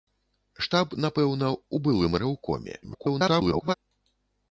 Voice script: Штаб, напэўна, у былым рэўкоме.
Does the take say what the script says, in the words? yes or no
no